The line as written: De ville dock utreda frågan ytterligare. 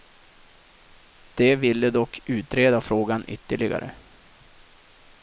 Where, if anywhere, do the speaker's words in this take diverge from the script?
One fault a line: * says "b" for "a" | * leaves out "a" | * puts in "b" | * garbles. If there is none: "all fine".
all fine